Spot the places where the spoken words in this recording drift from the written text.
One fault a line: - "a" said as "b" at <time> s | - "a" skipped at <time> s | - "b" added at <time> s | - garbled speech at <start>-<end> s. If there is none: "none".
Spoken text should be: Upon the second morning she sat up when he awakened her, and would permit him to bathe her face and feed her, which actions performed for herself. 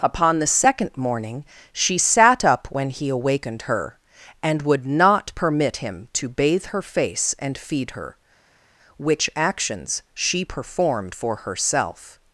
- "not" added at 4.8 s
- "she" added at 10.1 s